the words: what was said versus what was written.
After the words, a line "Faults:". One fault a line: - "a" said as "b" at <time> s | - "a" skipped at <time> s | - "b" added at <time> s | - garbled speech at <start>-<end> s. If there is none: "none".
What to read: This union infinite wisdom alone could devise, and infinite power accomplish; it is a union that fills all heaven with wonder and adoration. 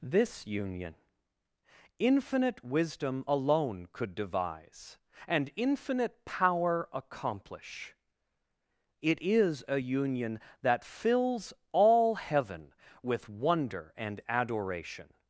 This union infinite wisdom alone could devise, and infinite power accomplish; it is a union that fills all heaven with wonder and adoration.
Faults:
none